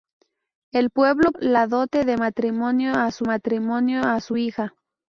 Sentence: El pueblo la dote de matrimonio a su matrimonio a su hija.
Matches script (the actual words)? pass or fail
pass